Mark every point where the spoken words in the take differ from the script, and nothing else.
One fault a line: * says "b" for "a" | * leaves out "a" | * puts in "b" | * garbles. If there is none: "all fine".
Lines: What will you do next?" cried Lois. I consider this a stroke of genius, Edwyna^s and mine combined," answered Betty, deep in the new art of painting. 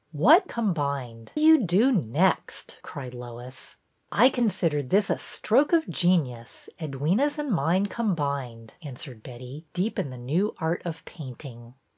* says "combined" for "will"